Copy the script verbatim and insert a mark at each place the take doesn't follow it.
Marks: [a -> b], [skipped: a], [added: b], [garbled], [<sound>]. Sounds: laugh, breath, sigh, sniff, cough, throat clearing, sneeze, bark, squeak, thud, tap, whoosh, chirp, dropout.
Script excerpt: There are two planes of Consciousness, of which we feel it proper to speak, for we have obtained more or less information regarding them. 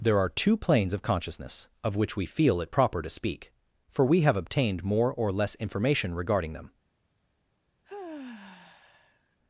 There are two planes of Consciousness, of which we feel it proper to speak, for we have obtained more or less information regarding them. [sigh]